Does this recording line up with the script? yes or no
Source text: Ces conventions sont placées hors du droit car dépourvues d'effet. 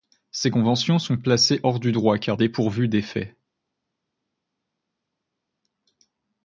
yes